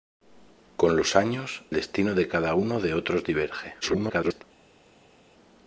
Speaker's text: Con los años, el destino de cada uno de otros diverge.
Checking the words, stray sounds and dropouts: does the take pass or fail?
fail